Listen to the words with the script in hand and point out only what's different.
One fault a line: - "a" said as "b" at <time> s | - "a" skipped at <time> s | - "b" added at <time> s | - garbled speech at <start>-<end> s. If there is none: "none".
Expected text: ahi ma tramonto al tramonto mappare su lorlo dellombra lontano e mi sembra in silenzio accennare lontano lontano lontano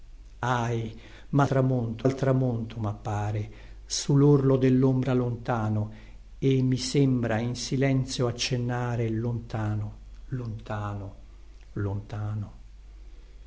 none